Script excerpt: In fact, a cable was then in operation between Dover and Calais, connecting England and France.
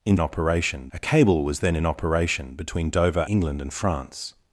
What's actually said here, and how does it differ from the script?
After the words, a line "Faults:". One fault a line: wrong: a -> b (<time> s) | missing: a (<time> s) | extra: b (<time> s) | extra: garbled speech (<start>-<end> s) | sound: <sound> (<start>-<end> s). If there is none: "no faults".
In operation, a cable was then in operation between Dover England and France.
Faults:
wrong: fact -> operation (0.2 s)
missing: and Calais connecting (3.2 s)